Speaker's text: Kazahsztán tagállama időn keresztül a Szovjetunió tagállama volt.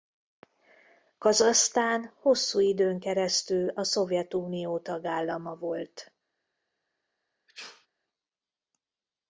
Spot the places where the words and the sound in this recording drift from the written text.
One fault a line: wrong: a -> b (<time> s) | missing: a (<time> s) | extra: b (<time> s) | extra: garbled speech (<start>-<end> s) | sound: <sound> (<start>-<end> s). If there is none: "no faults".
wrong: tagállama -> hosszú (2.2 s)
sound: sneeze (7.5-7.9 s)